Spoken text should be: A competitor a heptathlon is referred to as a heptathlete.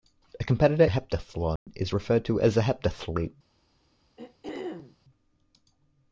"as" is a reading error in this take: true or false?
false